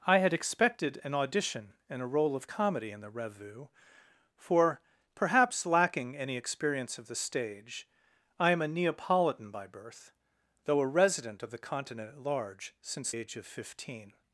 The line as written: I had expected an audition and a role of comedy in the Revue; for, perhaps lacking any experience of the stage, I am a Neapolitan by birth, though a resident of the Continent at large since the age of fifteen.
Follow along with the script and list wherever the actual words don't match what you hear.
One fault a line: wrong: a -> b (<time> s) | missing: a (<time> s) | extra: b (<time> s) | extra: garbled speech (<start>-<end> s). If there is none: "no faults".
missing: the (13.1 s)